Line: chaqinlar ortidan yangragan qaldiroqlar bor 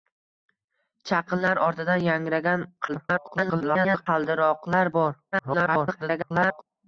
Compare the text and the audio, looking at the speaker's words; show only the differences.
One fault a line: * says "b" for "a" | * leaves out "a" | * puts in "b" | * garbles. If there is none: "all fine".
* garbles
* garbles